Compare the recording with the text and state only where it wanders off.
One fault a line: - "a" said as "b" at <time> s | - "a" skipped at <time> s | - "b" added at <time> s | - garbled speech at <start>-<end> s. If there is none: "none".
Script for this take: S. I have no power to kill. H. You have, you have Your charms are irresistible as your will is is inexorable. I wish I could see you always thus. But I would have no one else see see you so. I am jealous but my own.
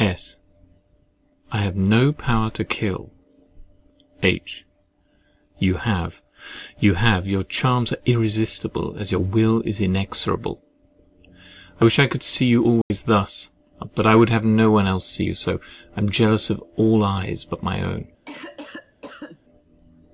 - "is" skipped at 9.8 s
- "see" skipped at 15.2 s
- "of all eyes" added at 16.5 s